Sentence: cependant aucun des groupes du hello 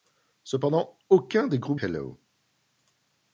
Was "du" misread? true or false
true